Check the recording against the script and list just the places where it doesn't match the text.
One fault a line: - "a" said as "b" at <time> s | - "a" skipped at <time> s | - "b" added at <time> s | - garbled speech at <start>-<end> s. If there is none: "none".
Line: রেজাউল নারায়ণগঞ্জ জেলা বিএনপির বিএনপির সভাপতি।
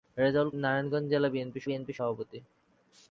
none